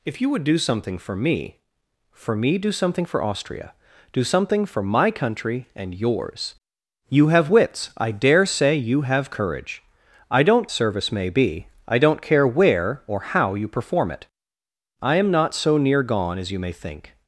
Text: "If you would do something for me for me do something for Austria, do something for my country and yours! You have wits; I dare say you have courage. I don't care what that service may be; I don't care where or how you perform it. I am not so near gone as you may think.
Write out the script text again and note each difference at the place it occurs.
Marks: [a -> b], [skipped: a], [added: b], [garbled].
"If you would do something for me for me do something for Austria, do something for my country and yours! You have wits; I dare say you have courage. I don't [skipped: care what that] service may be; I don't care where or how you perform it. I am not so near gone as you may think.